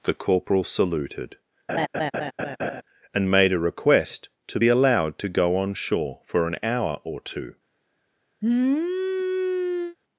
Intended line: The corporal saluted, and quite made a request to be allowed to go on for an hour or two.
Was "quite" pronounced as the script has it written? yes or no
no